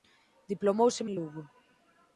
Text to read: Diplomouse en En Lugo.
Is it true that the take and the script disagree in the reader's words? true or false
false